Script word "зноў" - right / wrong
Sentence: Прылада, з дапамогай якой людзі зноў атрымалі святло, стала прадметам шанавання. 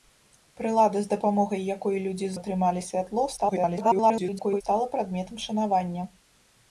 wrong